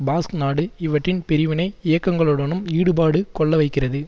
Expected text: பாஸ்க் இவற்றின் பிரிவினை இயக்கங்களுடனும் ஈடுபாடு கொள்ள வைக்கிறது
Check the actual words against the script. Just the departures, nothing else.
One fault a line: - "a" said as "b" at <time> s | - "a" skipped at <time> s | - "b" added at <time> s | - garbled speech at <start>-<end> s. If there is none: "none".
- "நாடு" added at 0.3 s